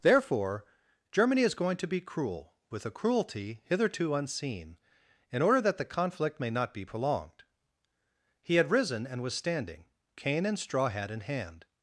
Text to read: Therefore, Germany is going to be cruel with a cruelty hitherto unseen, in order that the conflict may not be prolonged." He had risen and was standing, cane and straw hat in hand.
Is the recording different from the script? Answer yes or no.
no